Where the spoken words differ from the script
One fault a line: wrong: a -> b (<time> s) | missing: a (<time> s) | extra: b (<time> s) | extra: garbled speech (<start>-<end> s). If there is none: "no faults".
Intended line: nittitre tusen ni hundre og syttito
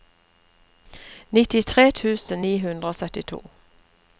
no faults